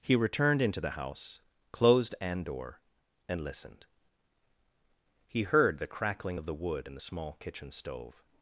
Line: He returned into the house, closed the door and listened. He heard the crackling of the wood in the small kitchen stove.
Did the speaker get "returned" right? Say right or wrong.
right